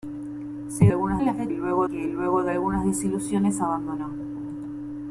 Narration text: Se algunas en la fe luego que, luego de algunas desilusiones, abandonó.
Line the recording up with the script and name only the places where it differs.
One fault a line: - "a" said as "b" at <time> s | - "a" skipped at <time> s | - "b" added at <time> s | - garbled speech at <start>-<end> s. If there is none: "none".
none